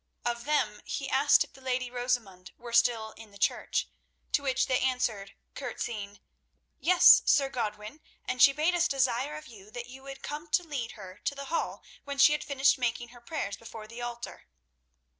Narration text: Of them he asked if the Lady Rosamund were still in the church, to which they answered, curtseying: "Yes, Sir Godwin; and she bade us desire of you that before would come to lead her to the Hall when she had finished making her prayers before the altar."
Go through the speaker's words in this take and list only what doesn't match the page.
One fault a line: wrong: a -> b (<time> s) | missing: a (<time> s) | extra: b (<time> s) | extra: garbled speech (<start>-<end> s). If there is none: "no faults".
wrong: before -> you (9.9 s)